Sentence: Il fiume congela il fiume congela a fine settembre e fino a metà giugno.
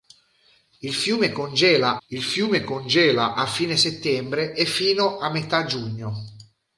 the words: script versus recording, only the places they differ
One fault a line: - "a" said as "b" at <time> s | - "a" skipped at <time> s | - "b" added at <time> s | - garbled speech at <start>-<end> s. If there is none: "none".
none